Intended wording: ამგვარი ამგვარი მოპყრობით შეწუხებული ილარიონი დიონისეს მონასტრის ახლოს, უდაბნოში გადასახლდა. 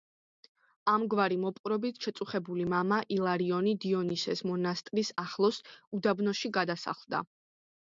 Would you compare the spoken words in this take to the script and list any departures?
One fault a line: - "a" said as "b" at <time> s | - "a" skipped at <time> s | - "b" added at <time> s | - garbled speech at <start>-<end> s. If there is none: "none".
- "ამგვარი" skipped at 1.4 s
- "მამა" added at 2.8 s